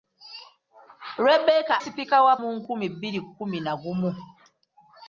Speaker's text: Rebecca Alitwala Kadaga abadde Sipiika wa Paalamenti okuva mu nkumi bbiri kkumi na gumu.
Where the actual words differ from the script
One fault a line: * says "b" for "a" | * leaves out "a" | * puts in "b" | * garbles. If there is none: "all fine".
* leaves out "Alitwala Kadaga abadde"
* leaves out "Paalamenti okuva"